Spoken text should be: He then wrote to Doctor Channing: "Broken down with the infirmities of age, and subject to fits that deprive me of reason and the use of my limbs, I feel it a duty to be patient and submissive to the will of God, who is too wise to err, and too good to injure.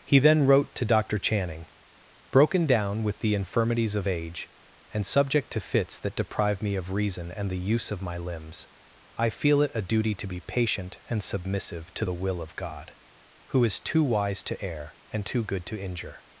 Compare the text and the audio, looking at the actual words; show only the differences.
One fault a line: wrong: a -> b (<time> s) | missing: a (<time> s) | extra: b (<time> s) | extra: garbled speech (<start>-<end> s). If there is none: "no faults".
no faults